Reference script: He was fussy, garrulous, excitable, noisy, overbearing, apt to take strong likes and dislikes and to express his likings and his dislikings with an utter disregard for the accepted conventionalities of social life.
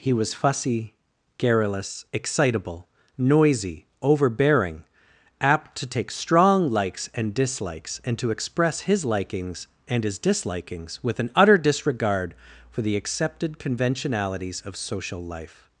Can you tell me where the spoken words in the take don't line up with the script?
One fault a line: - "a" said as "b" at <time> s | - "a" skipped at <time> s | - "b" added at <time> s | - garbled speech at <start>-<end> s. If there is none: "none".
none